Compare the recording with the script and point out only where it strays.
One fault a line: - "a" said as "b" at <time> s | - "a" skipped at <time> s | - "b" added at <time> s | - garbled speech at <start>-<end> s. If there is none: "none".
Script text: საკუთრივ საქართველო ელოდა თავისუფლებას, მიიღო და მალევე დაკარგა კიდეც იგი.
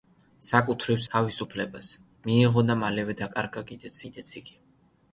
- "საქართველო ელოდა" skipped at 1.0 s
- "კიდეც" added at 4.1 s